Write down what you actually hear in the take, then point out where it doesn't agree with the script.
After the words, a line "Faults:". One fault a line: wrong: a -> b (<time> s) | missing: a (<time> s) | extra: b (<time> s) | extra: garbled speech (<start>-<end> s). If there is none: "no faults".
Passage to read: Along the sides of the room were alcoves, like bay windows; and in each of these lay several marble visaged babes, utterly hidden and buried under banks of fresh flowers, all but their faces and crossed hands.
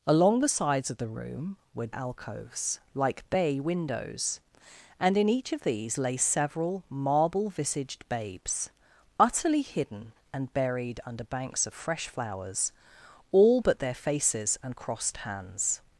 Along the sides of the room were alcoves, like bay windows; and in each of these lay several marble visaged babes, utterly hidden and buried under banks of fresh flowers, all but their faces and crossed hands.
Faults:
no faults